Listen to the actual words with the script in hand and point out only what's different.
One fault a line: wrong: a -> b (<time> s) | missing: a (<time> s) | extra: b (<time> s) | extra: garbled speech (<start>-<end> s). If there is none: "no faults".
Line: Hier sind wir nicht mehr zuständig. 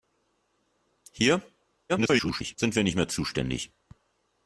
extra: garbled speech (1.9-2.6 s)